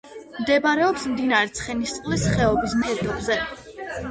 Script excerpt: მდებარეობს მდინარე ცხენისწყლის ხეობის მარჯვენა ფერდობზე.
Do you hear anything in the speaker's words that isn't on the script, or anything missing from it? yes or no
yes